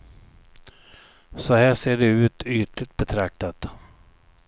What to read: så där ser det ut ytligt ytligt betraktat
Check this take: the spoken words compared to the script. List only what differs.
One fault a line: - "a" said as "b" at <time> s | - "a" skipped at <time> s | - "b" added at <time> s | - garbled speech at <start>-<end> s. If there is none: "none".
- "där" said as "här" at 1.5 s
- "ytligt" skipped at 3.0 s